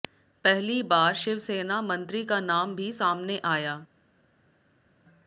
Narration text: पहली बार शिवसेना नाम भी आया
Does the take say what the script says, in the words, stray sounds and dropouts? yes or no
no